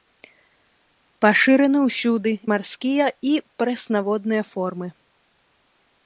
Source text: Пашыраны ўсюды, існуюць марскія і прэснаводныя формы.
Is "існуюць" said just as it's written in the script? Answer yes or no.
no